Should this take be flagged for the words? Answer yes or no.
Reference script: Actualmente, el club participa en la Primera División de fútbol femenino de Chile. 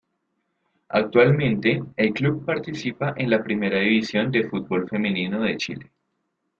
no